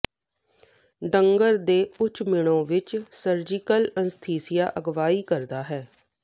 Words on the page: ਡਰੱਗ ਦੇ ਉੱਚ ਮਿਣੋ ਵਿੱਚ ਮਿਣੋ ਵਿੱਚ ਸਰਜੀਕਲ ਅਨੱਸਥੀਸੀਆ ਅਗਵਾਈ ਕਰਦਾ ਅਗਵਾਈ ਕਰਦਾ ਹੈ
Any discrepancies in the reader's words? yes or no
yes